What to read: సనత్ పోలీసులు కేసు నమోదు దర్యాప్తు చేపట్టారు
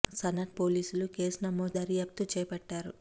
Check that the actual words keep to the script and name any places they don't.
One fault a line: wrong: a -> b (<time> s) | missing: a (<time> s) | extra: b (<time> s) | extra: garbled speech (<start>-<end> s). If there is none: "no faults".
no faults